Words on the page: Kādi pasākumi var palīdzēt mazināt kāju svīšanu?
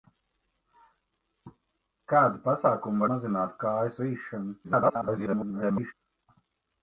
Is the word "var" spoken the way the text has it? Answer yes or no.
no